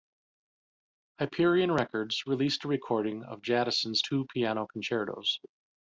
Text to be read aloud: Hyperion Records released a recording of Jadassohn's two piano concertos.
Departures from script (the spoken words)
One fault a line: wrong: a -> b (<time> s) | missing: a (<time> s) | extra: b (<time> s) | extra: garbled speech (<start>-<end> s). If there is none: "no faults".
no faults